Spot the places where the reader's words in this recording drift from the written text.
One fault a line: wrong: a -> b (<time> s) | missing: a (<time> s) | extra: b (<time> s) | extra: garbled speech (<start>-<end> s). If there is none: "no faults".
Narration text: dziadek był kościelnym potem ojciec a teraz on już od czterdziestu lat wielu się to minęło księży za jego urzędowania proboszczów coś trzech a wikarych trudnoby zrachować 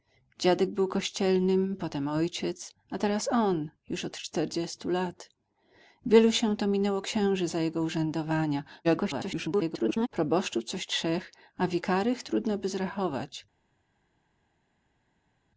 extra: garbled speech (8.8-10.1 s)